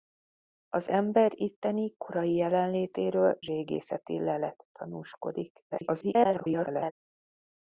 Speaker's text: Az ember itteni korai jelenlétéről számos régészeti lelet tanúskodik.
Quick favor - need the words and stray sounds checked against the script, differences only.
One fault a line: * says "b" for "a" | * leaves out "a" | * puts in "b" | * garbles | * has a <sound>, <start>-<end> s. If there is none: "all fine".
* leaves out "számos"
* garbles